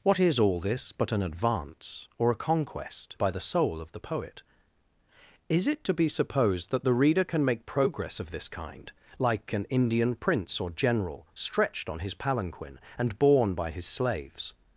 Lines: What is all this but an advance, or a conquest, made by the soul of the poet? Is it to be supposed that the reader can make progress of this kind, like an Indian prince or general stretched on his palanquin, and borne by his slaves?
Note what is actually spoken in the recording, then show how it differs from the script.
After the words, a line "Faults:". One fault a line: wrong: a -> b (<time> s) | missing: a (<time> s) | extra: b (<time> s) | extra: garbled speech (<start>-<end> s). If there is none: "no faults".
What is all this but an advance, or a conquest, by the soul of the poet? Is it to be supposed that the reader can make progress of this kind, like an Indian prince or general stretched on his palanquin, and borne by his slaves?
Faults:
missing: made (3.2 s)